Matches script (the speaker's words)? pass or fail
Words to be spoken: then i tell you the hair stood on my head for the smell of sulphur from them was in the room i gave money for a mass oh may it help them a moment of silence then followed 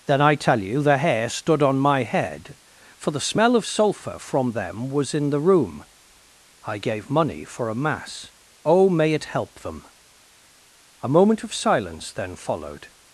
pass